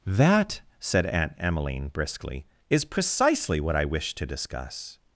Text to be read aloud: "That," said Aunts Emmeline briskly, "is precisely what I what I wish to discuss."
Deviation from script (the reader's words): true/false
true